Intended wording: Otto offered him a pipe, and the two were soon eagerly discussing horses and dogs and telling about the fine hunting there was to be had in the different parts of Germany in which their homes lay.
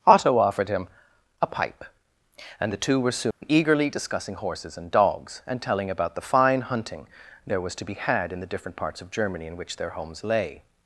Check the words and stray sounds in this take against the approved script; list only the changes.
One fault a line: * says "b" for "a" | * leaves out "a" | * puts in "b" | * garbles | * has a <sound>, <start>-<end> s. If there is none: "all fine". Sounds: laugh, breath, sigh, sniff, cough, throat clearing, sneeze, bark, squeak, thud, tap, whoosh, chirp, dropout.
* has a dropout, 3.3-3.4 s